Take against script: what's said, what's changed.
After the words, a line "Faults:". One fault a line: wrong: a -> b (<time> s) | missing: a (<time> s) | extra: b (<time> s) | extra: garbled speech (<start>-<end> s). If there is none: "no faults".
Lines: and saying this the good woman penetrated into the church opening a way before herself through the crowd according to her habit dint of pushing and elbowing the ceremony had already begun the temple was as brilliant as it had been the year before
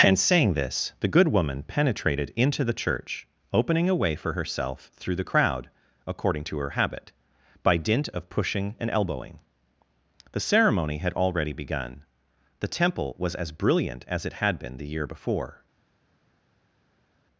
and saying this the good woman penetrated into the church opening a way for herself through the crowd according to her habit by dint of pushing and elbowing the ceremony had already begun the temple was as brilliant as it had been the year before
Faults:
wrong: before -> for (4.2 s)
extra: by (7.6 s)